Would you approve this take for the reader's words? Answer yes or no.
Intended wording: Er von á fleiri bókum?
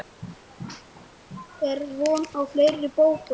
yes